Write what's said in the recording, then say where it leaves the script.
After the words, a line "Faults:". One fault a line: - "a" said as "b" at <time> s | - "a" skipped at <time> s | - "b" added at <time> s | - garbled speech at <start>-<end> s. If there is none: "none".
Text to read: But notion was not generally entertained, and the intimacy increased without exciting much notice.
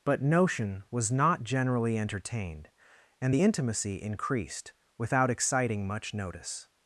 But notion was not generally entertained, and the intimacy increased without exciting much notice.
Faults:
none